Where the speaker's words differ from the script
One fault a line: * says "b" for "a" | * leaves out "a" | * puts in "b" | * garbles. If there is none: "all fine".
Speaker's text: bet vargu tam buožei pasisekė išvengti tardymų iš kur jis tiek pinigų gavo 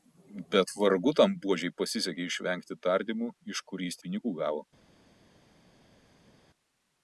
* leaves out "tiek"